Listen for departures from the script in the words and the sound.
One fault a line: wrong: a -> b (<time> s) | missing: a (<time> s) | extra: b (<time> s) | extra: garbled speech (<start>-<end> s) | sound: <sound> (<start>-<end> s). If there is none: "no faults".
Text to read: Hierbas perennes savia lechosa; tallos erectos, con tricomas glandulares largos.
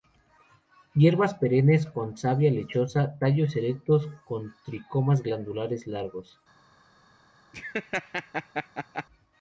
extra: con (1.9 s)
sound: laugh (7.5-9.1 s)